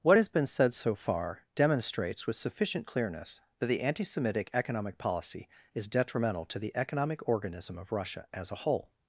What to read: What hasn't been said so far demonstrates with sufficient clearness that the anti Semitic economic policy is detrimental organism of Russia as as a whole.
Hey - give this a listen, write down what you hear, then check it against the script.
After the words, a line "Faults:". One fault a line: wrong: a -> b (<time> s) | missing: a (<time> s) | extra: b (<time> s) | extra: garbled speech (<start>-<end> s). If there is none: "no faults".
What has been said so far demonstrates with sufficient clearness that the anti Semitic economic policy is detrimental to the economic organism of Russia as a whole.
Faults:
wrong: hasn't -> has (0.2 s)
extra: to the economic (6.5 s)
missing: as (8.5 s)